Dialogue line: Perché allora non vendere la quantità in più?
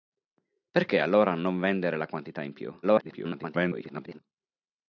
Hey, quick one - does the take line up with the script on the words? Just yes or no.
no